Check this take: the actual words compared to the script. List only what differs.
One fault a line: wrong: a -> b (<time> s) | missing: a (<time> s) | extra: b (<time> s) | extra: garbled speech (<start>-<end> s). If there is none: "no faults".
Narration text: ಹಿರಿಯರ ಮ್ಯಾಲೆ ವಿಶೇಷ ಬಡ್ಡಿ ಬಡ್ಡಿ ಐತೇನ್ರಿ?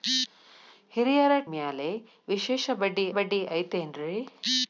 no faults